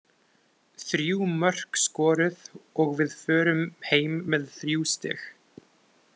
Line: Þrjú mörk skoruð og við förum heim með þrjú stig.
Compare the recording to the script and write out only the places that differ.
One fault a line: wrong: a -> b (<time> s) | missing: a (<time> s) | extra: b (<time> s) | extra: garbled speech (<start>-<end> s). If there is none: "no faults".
no faults